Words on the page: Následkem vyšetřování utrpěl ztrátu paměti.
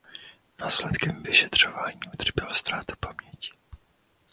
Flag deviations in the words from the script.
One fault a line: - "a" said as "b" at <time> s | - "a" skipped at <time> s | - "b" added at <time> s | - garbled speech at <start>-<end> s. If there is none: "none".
none